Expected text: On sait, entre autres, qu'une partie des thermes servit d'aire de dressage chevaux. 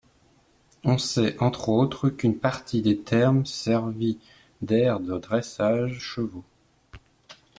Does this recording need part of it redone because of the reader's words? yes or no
no